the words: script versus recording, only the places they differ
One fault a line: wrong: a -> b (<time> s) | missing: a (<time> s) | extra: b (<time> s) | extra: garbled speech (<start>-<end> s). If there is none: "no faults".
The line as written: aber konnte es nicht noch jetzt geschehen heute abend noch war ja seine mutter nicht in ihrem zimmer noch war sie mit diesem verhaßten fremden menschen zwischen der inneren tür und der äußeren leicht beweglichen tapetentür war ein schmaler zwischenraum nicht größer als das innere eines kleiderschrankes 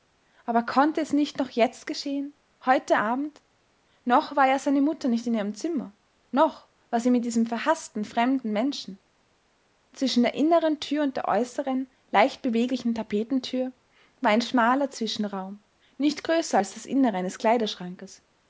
no faults